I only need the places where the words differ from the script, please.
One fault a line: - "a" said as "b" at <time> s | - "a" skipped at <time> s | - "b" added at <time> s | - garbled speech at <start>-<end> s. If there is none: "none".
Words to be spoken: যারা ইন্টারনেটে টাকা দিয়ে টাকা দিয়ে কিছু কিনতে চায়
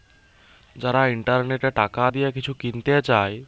- "টাকা দিয়ে" skipped at 2.3 s